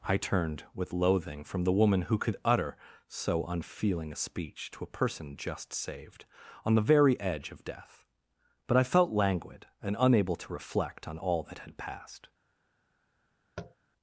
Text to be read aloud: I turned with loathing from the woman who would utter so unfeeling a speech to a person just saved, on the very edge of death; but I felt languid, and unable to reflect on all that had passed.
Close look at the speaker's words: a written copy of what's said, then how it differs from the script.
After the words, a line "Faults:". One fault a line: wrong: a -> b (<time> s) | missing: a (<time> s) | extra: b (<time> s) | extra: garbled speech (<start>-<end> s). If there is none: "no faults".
I turned with loathing from the woman who could utter so unfeeling a speech to a person just saved, on the very edge of death; but I felt languid, and unable to reflect on all that had passed.
Faults:
wrong: would -> could (2.2 s)